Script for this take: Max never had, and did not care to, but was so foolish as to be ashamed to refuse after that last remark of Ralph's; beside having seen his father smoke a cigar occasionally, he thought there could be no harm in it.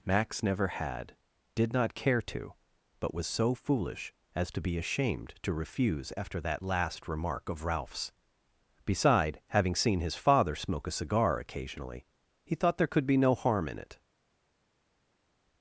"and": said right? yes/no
no